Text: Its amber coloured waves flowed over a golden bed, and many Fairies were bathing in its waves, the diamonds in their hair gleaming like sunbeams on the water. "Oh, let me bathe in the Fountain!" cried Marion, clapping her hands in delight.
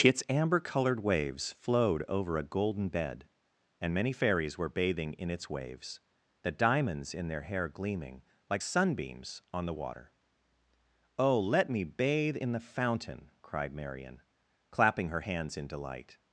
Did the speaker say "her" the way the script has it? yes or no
yes